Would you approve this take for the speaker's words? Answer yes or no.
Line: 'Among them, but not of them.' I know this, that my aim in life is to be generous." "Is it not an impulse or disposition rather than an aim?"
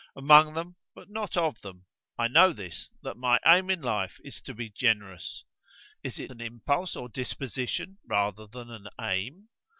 no